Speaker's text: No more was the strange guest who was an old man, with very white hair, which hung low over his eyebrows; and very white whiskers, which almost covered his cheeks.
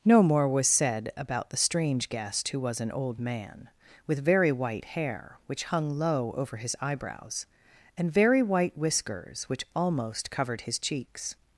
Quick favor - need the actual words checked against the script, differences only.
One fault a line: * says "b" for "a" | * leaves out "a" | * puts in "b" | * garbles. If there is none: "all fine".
* puts in "said about"